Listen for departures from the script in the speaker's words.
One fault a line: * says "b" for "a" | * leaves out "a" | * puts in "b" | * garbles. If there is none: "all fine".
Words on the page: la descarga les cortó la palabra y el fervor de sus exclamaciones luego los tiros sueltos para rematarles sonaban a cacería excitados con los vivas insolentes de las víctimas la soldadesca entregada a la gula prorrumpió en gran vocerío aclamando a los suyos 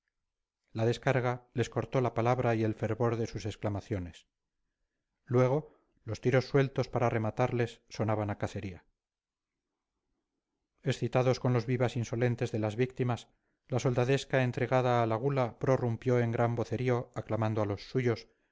all fine